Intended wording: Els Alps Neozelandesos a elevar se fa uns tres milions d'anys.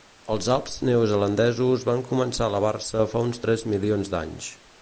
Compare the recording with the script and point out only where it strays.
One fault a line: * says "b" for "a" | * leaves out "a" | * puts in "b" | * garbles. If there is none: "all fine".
* puts in "van començar"